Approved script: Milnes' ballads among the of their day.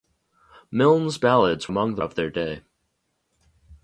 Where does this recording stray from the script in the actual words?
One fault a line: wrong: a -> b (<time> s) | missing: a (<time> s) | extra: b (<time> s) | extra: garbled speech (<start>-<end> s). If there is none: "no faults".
no faults